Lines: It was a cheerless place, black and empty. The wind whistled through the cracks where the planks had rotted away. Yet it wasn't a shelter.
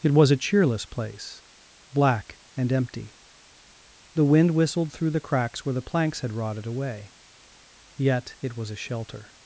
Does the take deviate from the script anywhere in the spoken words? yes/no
yes